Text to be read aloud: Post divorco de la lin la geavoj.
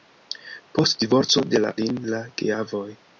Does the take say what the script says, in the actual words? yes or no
yes